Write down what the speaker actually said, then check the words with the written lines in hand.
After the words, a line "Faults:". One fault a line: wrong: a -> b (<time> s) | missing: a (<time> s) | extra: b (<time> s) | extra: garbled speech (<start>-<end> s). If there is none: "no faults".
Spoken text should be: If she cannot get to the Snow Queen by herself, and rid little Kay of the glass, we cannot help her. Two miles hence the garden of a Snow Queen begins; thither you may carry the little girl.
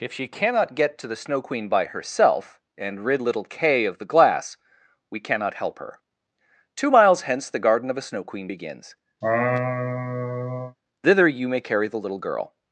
If she cannot get to the Snow Queen by herself, and rid little Kay of the glass, we cannot help her. Two miles hence the garden of a Snow Queen begins; thither you may carry the little girl.
Faults:
no faults